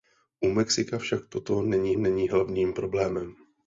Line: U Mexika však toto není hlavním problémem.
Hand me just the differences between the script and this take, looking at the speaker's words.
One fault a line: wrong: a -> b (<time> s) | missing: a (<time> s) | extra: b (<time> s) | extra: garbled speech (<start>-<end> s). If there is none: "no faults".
extra: není (1.9 s)